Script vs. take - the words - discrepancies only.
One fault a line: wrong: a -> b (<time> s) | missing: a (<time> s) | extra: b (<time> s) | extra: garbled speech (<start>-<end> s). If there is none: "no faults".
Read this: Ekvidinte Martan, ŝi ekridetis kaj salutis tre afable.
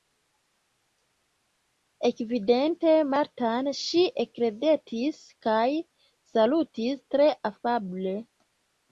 no faults